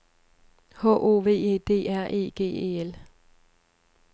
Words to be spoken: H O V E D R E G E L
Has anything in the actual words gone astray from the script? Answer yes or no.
no